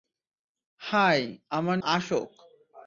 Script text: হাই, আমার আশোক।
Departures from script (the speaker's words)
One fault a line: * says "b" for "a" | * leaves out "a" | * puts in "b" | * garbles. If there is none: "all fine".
all fine